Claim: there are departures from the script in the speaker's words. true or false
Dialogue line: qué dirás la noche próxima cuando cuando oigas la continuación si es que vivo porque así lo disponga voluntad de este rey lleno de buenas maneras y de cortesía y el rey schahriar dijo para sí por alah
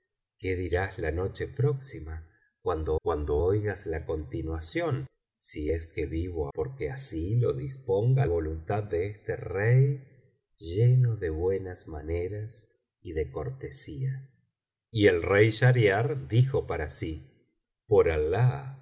false